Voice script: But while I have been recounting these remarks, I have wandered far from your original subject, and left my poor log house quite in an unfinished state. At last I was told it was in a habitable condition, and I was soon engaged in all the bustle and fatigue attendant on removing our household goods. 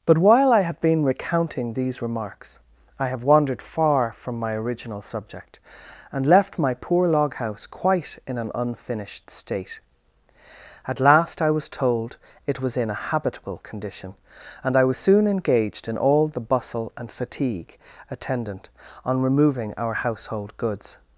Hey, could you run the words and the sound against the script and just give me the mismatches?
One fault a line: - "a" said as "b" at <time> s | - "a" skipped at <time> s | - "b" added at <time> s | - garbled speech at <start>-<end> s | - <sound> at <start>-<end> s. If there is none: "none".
- "your" said as "my" at 4.4 s